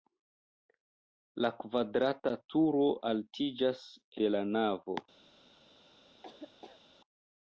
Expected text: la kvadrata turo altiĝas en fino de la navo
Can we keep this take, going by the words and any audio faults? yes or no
no